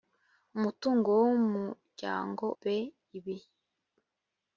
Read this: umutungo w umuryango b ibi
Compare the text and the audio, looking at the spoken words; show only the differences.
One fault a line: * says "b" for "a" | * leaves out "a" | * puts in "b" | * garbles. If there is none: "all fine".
all fine